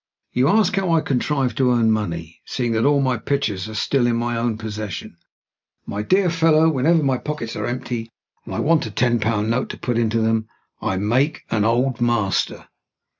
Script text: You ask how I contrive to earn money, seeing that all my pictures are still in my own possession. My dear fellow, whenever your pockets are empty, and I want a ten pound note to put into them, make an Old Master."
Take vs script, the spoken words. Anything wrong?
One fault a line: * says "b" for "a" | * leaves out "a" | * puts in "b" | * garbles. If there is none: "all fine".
* says "my" for "your"
* puts in "I"